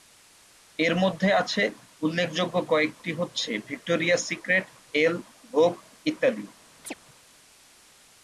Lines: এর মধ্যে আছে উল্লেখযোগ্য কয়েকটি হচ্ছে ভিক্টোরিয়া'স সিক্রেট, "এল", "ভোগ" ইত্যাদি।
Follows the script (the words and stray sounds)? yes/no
no